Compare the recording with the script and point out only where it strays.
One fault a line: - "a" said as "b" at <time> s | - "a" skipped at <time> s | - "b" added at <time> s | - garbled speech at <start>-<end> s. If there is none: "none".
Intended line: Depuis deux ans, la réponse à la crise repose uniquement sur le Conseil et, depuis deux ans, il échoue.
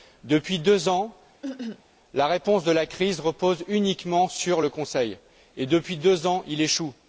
none